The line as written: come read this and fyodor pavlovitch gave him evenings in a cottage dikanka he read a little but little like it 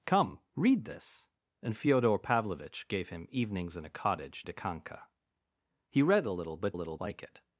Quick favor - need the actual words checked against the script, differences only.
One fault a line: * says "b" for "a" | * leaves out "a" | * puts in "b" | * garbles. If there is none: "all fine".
all fine